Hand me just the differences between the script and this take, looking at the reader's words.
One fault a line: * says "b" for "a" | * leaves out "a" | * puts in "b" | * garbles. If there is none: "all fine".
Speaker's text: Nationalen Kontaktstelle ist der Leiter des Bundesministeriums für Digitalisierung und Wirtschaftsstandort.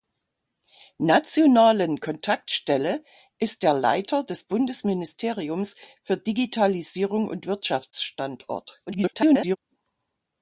* garbles